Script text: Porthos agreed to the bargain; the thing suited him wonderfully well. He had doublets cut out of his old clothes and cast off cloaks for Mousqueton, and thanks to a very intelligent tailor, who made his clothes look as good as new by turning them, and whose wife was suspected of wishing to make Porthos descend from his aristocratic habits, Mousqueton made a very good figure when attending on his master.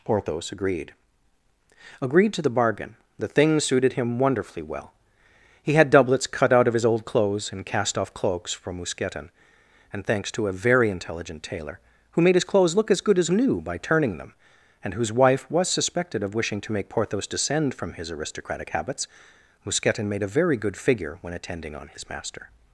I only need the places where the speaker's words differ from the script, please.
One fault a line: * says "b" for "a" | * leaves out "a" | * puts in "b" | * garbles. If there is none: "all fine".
* puts in "agreed"